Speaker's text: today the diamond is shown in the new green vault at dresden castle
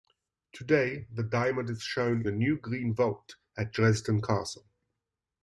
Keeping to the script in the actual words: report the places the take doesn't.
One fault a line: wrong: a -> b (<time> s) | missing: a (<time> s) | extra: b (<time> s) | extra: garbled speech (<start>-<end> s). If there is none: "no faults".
missing: in (2.2 s)